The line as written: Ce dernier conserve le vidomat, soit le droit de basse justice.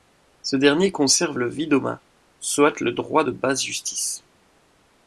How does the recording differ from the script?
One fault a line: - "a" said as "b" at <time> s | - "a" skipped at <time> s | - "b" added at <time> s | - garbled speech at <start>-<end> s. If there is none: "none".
none